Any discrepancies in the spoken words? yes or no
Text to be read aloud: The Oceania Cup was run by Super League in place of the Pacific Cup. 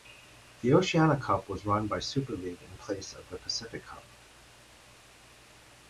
no